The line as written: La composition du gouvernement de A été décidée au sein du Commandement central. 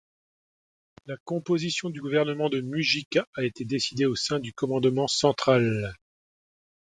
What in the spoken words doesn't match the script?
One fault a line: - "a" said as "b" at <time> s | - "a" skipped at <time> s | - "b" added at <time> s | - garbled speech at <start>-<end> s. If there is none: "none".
- "Mujica" added at 2.6 s